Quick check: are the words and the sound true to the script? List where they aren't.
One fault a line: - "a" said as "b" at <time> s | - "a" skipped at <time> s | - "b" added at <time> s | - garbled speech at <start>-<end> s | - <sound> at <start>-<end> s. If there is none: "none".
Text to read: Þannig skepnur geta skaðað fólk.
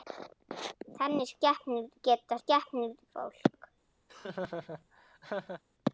- "skaðað" said as "skepnur" at 2.4 s
- laugh at 4.1-5.6 s